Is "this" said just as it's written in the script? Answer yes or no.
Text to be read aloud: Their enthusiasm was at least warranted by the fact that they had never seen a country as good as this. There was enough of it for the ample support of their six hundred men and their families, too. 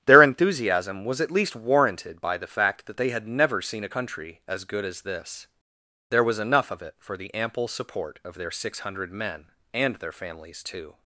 yes